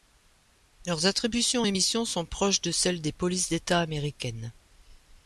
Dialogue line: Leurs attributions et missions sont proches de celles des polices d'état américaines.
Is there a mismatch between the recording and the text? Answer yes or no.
no